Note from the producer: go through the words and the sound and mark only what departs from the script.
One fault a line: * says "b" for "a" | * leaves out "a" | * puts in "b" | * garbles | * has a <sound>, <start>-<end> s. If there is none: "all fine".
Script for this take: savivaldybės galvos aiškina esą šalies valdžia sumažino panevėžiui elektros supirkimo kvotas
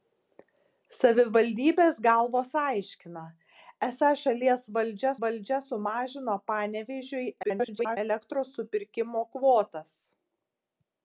* puts in "valdžia"
* garbles